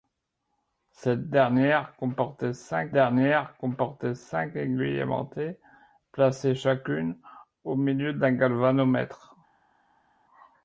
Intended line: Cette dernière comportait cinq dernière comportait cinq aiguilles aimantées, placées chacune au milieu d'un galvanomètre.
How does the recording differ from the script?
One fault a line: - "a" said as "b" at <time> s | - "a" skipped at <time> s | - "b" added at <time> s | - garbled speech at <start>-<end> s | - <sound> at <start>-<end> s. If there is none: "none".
none